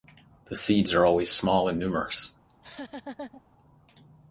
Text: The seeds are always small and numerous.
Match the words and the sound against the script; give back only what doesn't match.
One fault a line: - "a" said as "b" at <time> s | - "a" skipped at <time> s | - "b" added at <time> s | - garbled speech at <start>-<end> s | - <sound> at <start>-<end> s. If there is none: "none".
- laugh at 2.5-3.4 s